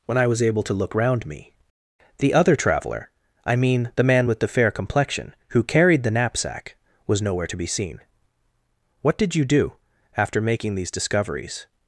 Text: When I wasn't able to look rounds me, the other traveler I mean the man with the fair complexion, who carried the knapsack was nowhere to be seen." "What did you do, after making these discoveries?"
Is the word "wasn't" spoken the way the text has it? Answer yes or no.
no